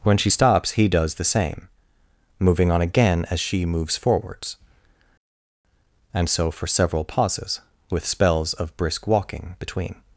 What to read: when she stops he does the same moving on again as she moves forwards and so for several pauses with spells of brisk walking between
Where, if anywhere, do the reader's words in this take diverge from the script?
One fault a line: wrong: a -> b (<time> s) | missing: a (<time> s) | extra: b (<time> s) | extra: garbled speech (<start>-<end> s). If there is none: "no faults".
no faults